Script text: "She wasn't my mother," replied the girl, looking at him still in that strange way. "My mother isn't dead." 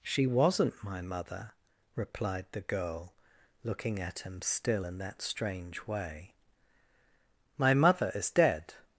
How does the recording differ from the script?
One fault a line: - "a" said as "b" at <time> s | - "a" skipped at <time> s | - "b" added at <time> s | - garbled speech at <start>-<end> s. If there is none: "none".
- "isn't" said as "is" at 8.1 s